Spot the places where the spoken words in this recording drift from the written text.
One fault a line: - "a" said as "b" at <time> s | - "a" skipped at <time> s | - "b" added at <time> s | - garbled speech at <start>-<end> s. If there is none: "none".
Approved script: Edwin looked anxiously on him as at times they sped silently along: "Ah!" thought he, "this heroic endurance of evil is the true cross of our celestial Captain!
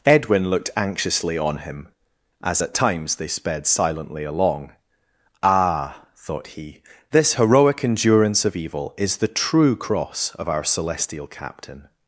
none